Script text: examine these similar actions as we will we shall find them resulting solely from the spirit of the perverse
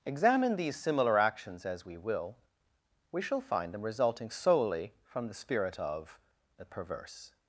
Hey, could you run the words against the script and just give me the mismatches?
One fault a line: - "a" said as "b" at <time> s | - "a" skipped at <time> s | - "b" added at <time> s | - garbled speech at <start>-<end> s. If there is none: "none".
none